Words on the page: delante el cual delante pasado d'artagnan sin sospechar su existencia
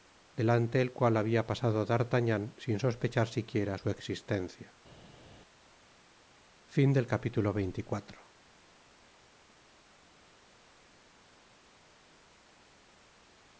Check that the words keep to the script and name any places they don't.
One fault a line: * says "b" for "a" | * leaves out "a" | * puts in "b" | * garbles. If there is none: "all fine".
* says "habia" for "delante"
* puts in "siquiera"